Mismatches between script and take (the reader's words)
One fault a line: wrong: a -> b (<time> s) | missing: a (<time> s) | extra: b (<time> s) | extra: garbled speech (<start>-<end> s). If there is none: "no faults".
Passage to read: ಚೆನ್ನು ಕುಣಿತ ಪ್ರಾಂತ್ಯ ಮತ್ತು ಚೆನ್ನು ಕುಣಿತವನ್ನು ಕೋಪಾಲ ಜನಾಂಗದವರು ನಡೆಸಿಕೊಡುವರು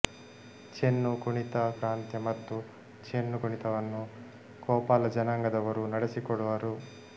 no faults